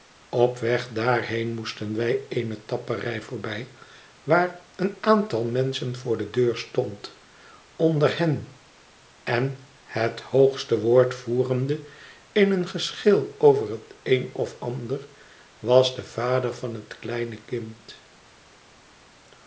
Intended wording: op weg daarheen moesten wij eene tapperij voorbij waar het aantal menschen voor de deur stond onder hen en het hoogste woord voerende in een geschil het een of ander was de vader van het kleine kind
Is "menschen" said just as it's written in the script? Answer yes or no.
yes